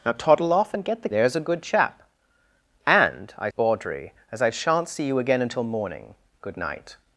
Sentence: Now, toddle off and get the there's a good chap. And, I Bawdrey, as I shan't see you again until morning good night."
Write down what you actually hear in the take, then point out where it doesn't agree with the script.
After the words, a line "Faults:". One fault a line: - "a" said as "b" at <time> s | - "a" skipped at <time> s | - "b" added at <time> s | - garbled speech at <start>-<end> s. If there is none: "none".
Now, toddle off and get the there's a good chap. And, I Bawdrey, as I shan't see you again until morning good night."
Faults:
none